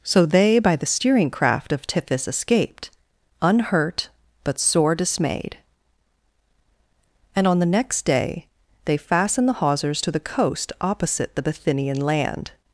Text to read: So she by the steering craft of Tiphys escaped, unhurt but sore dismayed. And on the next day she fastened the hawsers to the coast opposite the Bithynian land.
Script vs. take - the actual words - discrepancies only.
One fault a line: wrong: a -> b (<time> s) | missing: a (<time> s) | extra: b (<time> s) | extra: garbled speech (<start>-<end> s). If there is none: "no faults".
wrong: she -> they (0.2 s)
wrong: she -> they (8.8 s)